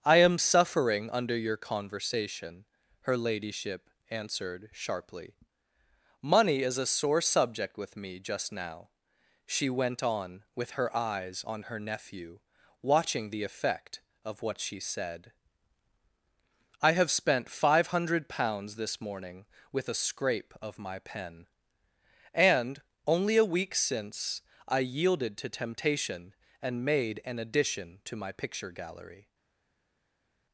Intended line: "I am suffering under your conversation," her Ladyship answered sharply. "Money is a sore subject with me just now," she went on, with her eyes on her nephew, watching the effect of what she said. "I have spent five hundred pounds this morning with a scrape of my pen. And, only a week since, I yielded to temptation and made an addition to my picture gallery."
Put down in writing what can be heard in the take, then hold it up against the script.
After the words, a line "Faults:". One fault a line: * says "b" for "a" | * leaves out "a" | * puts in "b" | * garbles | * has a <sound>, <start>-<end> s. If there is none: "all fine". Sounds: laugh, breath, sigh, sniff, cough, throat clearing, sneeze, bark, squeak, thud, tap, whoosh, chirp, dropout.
"I am suffering under your conversation," her Ladyship answered sharply. "Money is a sore subject with me just now," she went on, with her eyes on her nephew, watching the effect of what she said. "I have spent five hundred pounds this morning with a scrape of my pen. And, only a week since, I yielded to temptation and made an addition to my picture gallery."
Faults:
all fine